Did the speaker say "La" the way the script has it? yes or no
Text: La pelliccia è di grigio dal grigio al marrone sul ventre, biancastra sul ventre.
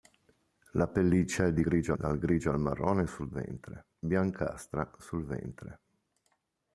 yes